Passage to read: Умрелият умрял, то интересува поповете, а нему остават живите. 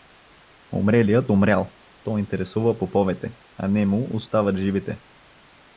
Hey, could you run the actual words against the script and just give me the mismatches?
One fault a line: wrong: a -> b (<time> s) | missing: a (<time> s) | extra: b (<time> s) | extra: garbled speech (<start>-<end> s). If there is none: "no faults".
no faults